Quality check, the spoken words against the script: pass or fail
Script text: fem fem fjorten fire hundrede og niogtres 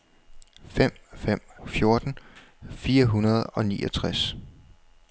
pass